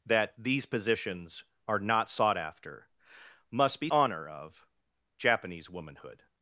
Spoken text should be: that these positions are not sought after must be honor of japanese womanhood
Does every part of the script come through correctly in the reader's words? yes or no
yes